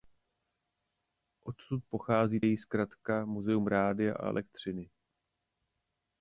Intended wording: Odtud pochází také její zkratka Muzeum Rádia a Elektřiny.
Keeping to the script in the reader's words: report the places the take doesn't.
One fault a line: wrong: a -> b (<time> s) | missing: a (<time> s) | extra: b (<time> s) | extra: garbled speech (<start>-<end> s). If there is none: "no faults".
missing: také (2.4 s)